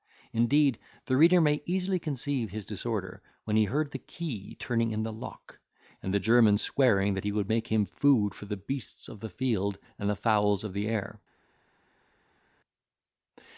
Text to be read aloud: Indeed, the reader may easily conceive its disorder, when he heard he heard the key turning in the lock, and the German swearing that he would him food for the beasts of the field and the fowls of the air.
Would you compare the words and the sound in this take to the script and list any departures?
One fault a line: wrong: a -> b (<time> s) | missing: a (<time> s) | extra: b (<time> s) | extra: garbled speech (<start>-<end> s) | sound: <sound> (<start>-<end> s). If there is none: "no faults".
wrong: its -> his (2.5 s)
missing: he heard (3.9 s)
extra: make (7.5 s)